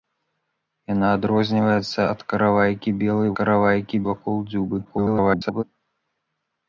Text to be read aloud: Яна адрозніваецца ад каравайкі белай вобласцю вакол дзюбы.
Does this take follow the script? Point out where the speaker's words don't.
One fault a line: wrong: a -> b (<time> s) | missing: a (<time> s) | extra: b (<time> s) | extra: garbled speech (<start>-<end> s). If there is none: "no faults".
wrong: вобласцю -> каравайкі (3.4 s)
extra: garbled speech (4.8-5.6 s)